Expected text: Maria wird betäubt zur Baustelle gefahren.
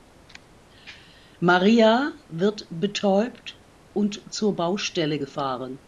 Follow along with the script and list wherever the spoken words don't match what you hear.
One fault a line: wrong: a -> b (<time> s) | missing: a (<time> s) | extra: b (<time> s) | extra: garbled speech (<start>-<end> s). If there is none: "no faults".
extra: und (3.9 s)